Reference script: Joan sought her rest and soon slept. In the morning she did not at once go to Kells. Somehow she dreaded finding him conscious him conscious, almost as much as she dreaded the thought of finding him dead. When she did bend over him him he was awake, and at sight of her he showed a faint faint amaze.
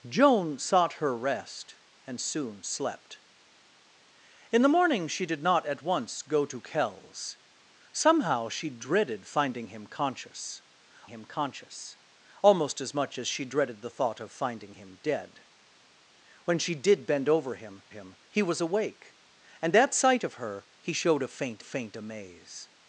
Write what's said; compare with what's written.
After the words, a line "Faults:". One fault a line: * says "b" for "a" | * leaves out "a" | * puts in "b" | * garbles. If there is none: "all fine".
Joan sought her rest and soon slept. In the morning she did not at once go to Kells. Somehow she dreaded finding him conscious him conscious, almost as much as she dreaded the thought of finding him dead. When she did bend over him him he was awake, and at sight of her he showed a faint faint amaze.
Faults:
all fine